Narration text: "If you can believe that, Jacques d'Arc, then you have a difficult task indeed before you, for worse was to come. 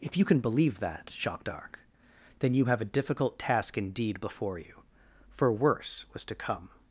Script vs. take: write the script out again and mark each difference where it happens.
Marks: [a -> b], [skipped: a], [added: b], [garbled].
"If you can believe that, Jacques d'Arc, then you have a difficult task indeed before you, for worse was to come.